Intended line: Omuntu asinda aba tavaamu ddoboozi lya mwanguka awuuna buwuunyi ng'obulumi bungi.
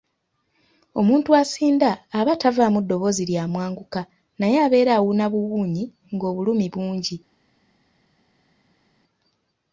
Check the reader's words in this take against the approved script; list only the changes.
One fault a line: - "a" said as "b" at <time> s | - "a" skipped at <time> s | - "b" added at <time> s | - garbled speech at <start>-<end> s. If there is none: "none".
- "naye abeera" added at 4.4 s